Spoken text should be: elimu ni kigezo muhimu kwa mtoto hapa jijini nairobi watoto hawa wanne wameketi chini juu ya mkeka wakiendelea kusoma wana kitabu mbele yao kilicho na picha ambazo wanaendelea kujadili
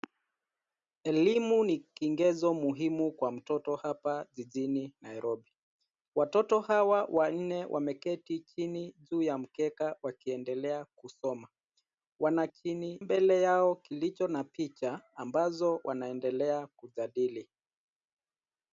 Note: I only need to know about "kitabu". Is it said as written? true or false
false